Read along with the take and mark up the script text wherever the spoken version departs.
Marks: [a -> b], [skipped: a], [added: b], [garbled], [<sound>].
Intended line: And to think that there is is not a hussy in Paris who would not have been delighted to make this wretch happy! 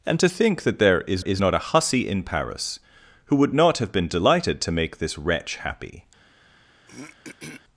And to think that there is is not a hussy in Paris who would not have been delighted to make this wretch happy! [throat clearing]